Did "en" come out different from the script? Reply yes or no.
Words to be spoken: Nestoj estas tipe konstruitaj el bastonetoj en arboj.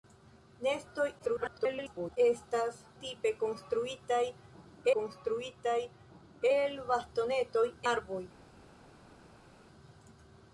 yes